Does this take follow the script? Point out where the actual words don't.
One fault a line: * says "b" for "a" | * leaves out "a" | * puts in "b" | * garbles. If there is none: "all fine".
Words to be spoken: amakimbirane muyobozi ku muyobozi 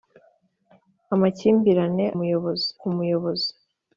all fine